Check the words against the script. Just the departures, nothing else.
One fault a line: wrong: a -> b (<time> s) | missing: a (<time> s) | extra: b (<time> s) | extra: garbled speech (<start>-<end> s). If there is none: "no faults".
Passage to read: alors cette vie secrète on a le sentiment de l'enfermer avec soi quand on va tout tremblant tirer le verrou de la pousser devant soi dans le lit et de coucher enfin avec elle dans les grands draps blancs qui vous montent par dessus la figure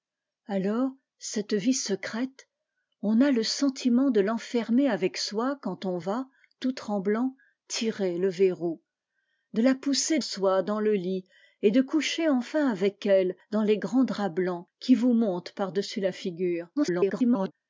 missing: devant (10.2 s)
extra: garbled speech (16.8-17.5 s)